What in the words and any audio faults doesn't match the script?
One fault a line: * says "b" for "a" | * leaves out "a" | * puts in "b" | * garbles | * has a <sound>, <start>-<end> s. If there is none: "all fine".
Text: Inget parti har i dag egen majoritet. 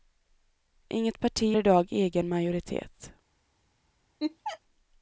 * leaves out "har"
* has a laugh, 4.2-4.6 s